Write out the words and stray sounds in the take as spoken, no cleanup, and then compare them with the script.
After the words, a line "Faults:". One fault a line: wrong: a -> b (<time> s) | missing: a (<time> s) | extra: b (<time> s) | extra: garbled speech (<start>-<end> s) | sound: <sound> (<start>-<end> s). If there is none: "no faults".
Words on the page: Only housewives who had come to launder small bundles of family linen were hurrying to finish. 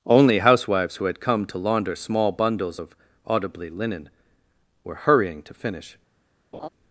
Only housewives who had come to launder small bundles of audibly linen were hurrying to finish.
Faults:
wrong: family -> audibly (3.3 s)
sound: laugh (6.5-6.7 s)